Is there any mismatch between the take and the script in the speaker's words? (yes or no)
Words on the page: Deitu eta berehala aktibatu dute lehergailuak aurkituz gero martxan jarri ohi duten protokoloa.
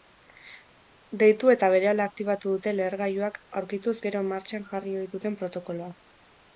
no